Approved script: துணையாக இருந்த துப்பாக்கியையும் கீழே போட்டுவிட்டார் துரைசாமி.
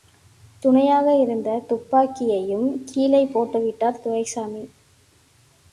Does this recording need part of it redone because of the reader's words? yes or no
no